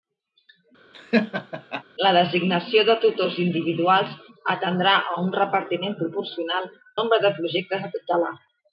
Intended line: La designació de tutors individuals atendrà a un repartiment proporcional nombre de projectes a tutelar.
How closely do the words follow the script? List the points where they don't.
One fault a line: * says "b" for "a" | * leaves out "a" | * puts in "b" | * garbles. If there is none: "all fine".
all fine